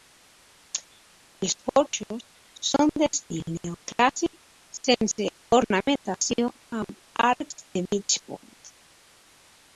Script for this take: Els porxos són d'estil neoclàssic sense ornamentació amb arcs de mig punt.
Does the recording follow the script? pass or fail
pass